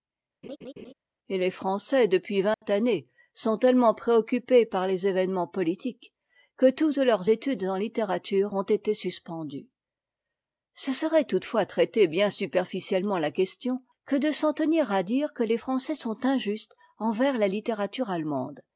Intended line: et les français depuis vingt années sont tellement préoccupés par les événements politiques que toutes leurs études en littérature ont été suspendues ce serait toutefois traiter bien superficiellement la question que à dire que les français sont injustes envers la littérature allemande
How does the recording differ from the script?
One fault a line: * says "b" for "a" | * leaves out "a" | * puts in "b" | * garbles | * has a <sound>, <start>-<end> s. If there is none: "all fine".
* has a laugh, 0.4-0.9 s
* has a dropout, 2.5-2.6 s
* puts in "de s'en tenir"